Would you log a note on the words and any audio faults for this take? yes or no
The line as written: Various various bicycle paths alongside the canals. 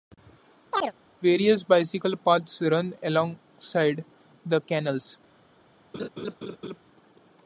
yes